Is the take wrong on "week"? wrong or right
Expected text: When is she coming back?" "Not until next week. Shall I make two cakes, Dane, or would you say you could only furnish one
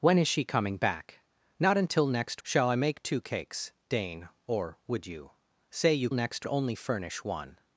wrong